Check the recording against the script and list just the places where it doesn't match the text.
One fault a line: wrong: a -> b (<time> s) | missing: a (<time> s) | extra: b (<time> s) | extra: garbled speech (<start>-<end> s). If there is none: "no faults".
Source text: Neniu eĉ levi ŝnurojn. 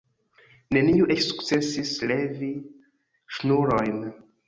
extra: sukcesis (1.3 s)